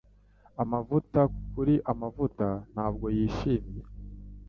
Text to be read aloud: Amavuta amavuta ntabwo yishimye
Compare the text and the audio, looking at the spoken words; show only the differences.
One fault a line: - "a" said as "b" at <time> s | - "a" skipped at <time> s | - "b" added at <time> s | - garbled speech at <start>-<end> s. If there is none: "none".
- "kuri" added at 1.5 s